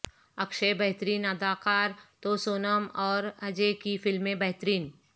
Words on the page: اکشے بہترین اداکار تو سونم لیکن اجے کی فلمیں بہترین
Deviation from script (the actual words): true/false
true